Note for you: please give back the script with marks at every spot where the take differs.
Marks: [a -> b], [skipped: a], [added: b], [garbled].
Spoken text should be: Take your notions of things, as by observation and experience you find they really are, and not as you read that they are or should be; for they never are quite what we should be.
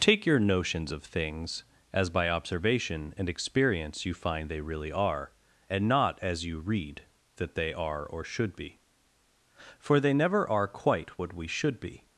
Take your notions of things, as by observation and experience you find they really are, and not as you read that they are or should be; for they never are quite what we should be.